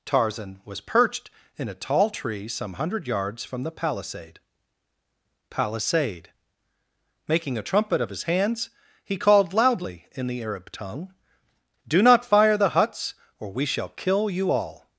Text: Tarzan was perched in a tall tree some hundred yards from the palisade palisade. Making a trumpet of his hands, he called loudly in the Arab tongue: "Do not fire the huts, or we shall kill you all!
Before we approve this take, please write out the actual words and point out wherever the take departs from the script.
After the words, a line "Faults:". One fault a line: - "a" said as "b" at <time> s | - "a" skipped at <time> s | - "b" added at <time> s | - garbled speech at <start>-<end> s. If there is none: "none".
Tarzan was perched in a tall tree some hundred yards from the palisade palisade. Making a trumpet of his hands, he called loudly in the Arab tongue: "Do not fire the huts, or we shall kill you all!
Faults:
none